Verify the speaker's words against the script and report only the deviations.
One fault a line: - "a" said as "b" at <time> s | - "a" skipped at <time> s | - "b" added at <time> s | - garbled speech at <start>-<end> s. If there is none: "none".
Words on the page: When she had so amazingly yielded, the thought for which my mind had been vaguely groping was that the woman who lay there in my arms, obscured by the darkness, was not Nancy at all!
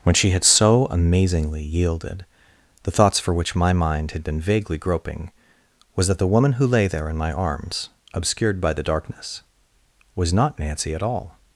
- "thought" said as "thoughts" at 2.9 s